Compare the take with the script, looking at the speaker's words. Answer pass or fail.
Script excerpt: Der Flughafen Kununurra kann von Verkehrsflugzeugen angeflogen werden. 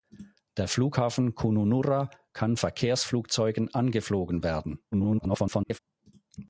fail